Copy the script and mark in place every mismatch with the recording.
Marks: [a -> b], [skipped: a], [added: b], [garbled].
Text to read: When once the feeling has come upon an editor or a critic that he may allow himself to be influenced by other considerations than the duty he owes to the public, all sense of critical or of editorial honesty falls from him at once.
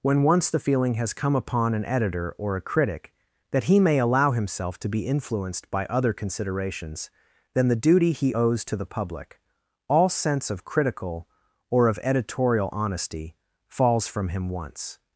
When once the feeling has come upon an editor or a critic that he may allow himself to be influenced by other considerations than the duty he owes to the public, all sense of critical or of editorial honesty falls from him [skipped: at] once.